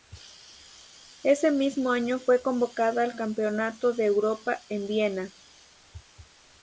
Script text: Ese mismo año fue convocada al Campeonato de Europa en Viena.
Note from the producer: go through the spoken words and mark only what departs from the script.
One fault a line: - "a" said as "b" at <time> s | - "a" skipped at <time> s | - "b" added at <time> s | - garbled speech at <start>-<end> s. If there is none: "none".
none